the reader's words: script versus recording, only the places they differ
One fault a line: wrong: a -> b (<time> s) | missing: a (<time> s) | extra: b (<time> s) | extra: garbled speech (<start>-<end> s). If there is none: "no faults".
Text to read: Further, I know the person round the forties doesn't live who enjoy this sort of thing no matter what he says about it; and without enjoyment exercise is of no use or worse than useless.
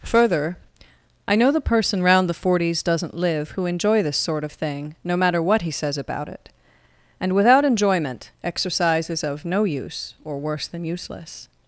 no faults